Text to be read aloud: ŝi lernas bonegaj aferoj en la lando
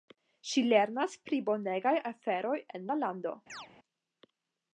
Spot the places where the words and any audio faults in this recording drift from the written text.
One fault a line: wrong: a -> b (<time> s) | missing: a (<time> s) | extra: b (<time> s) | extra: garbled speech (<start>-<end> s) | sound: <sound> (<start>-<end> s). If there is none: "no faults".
extra: pri (1.3 s)
sound: chirp (3.5-3.7 s)